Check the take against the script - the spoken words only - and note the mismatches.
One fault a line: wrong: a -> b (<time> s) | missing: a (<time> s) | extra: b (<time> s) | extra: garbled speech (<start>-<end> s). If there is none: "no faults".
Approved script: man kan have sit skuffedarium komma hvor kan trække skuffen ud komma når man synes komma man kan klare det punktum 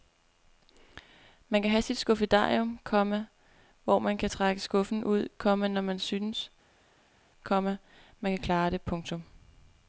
extra: man (4.0 s)